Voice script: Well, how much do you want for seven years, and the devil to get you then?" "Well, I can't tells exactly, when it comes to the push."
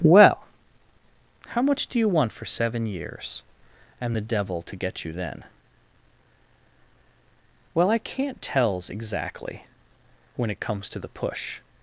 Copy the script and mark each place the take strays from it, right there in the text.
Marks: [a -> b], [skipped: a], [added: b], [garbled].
Well, how much do you want for seven years, and the devil to get you then?" "Well, I can't tells exactly, when it comes to the push."